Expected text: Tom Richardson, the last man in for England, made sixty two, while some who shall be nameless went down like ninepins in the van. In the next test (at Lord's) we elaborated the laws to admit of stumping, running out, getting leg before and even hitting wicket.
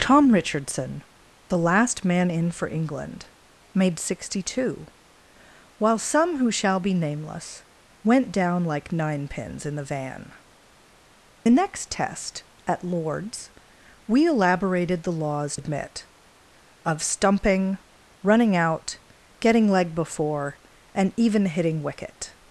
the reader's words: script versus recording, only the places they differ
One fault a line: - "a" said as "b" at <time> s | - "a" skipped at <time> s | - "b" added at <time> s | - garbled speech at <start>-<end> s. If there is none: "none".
- "In" skipped at 10.3 s
- "to" skipped at 15.6 s